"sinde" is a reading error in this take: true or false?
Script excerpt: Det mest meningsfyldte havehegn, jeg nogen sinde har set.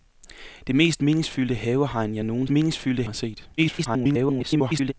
true